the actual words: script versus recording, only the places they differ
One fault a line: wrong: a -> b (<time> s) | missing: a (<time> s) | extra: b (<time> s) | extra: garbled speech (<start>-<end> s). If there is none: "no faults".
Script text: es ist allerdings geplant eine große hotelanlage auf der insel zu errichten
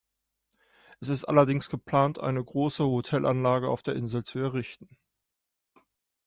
no faults